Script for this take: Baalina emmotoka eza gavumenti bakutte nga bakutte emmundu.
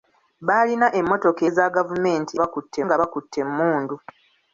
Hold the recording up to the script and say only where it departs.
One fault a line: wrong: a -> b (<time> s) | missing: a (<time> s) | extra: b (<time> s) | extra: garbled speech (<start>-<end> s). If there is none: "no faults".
no faults